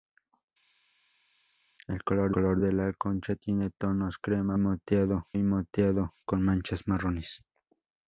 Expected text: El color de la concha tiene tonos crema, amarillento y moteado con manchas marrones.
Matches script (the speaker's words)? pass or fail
fail